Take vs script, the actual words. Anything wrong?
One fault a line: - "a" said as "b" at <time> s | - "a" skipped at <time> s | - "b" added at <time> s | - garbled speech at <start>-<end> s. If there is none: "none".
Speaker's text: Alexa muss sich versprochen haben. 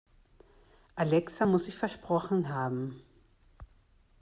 none